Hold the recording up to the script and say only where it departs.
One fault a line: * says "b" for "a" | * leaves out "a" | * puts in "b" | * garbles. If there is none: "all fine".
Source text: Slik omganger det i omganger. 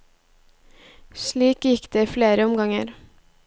* says "gikk" for "omganger"
* puts in "flere"